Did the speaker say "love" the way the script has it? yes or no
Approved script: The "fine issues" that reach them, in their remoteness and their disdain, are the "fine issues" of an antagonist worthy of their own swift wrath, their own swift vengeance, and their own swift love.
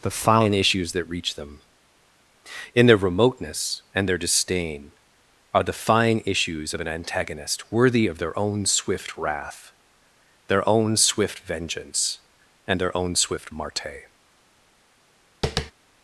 no